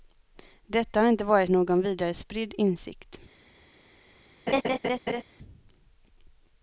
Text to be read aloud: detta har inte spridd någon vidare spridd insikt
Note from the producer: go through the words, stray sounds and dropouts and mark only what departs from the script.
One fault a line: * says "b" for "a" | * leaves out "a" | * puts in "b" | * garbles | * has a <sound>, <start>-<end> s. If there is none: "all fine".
* says "varit" for "spridd"
* has a laugh, 4.5-5.2 s